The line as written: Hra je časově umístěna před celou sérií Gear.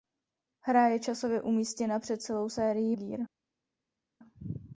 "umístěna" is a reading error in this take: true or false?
false